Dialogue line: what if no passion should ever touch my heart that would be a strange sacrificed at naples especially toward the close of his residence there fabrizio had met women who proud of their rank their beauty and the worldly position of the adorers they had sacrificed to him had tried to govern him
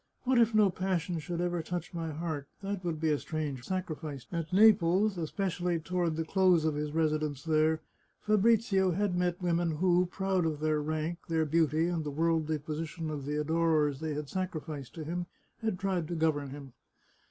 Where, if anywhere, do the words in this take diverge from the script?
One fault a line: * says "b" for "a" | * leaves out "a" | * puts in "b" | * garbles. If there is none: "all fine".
all fine